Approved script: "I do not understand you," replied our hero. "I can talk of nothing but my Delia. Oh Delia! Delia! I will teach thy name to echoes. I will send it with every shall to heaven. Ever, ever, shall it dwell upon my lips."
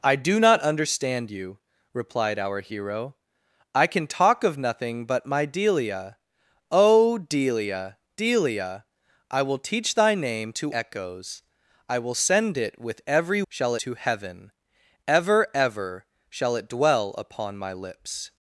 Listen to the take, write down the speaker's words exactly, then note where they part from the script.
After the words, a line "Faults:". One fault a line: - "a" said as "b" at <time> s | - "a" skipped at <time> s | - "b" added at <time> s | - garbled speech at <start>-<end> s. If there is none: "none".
"I do not understand you," replied our hero. "I can talk of nothing but my Delia. Oh Delia! Delia! I will teach thy name to echoes. I will send it with every shall to heaven. Ever, ever, shall it dwell upon my lips."
Faults:
none